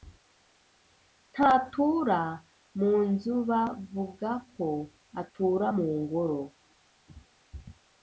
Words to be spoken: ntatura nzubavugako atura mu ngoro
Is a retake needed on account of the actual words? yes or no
yes